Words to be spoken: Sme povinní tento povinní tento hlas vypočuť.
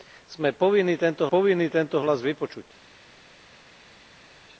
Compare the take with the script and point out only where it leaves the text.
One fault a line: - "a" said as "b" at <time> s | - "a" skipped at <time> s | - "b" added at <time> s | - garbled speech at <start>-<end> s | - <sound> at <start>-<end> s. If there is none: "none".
none